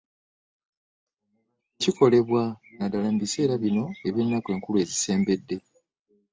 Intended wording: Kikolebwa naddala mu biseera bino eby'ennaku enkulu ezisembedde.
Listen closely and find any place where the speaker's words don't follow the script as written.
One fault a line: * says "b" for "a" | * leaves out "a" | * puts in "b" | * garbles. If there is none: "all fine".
all fine